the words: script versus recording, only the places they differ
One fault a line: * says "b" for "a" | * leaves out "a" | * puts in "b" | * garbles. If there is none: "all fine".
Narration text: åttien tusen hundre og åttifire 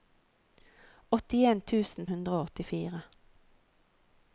all fine